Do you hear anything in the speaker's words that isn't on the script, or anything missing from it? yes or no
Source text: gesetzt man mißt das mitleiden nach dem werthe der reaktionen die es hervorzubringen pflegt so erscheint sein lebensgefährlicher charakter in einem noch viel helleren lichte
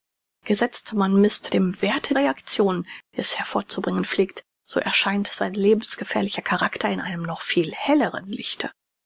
yes